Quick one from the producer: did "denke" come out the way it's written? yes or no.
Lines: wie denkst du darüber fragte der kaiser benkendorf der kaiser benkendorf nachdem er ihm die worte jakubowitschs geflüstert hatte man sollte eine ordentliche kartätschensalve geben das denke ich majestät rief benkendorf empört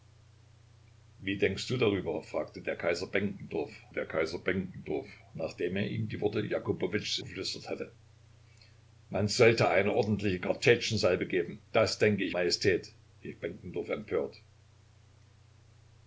yes